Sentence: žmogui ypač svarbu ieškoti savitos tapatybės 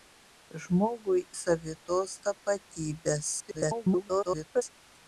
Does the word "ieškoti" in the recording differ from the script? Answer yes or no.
yes